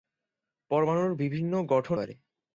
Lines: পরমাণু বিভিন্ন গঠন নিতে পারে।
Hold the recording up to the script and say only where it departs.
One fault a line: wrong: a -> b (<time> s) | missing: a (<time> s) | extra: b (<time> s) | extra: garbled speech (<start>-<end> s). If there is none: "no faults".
missing: নিতে (2.0 s)